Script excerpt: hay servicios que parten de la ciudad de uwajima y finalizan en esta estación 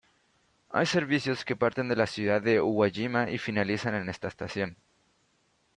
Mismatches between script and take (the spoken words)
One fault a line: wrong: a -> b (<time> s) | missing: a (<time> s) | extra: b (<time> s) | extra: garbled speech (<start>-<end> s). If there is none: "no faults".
no faults